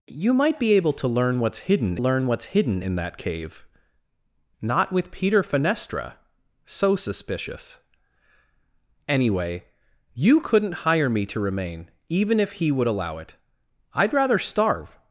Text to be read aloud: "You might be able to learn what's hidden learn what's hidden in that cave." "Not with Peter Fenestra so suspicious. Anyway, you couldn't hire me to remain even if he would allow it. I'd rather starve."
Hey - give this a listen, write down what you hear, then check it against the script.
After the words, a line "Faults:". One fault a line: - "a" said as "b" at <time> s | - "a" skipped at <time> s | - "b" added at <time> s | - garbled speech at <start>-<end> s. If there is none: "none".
"You might be able to learn what's hidden learn what's hidden in that cave." "Not with Peter Fenestra so suspicious. Anyway, you couldn't hire me to remain even if he would allow it. I'd rather starve."
Faults:
none